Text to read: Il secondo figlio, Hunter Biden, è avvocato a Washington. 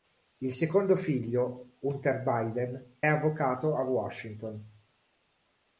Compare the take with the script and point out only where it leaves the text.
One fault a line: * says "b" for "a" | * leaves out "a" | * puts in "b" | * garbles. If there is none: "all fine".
* leaves out "è"